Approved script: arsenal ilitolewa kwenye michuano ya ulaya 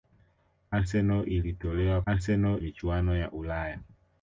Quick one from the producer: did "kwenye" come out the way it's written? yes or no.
no